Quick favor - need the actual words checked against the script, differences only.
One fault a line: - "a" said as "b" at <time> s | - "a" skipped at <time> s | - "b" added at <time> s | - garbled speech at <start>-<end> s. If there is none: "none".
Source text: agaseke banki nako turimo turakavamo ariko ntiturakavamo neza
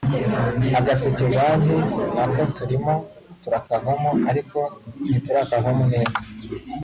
none